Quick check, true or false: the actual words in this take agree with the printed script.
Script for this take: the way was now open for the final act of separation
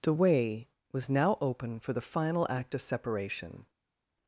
true